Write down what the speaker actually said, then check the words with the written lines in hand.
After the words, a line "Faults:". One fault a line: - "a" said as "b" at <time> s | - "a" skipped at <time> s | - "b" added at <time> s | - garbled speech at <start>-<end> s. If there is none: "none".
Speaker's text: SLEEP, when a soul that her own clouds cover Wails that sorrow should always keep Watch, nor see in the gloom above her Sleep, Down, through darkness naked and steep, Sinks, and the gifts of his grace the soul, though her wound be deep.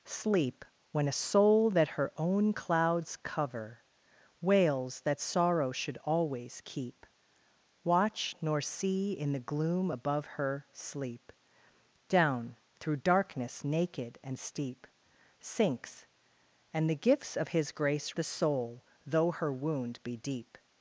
SLEEP, when a soul that her own clouds cover Wails that sorrow should always keep Watch, nor see in the gloom above her Sleep, Down, through darkness naked and steep, Sinks, and the gifts of his grace the soul, though her wound be deep.
Faults:
none